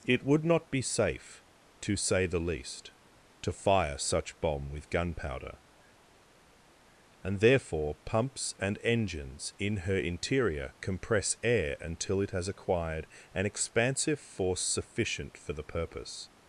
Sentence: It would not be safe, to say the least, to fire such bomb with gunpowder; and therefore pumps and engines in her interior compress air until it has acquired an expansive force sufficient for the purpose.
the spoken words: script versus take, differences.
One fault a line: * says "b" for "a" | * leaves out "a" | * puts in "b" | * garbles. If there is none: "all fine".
all fine